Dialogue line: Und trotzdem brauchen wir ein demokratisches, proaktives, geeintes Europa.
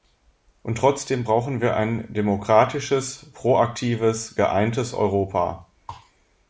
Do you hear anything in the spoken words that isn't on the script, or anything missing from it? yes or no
no